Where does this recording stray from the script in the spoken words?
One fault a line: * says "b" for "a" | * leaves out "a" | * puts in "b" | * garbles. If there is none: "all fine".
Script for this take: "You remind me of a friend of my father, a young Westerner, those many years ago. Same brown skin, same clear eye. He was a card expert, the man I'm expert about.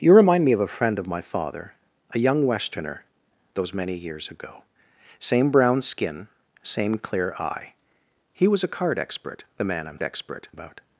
all fine